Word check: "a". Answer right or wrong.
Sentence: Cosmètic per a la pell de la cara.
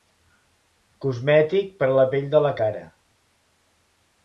right